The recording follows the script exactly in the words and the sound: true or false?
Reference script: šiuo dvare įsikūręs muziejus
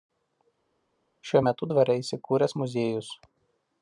false